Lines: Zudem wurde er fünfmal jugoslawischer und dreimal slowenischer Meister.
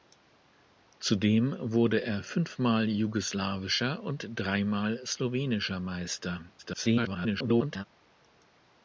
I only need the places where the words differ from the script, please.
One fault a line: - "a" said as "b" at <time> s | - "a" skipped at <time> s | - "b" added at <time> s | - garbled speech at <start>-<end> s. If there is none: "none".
- garbled speech at 6.6-7.8 s